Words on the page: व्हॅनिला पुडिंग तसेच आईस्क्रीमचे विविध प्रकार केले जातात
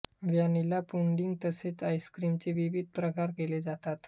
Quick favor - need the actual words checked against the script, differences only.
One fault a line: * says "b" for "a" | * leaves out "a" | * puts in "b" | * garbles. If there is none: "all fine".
all fine